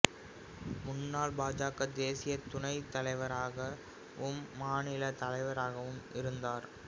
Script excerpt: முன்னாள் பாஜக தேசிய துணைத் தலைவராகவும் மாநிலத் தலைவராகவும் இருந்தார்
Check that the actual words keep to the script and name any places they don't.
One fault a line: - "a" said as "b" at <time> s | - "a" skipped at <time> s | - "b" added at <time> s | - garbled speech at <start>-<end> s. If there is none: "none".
none